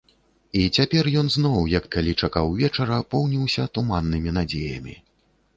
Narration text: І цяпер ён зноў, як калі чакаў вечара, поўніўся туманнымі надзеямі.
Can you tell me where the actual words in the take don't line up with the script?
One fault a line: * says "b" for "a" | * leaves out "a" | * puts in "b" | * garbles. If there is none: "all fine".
all fine